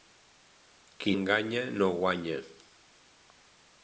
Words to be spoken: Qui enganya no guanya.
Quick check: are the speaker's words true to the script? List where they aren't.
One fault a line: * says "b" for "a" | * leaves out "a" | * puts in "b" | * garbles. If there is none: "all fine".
all fine